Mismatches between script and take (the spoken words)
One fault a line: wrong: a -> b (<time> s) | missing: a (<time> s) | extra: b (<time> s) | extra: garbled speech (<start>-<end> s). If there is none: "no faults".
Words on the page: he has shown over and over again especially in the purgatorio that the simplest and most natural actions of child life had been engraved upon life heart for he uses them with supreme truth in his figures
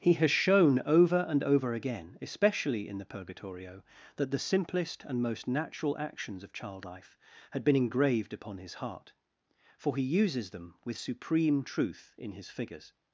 wrong: life -> his (8.6 s)